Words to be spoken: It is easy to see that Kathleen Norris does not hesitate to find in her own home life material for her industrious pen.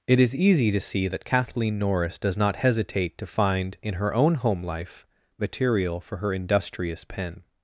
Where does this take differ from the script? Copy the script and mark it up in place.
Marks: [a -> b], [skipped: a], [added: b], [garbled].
It is easy to see that Kathleen Norris does not hesitate to find in her own home life material for her industrious pen.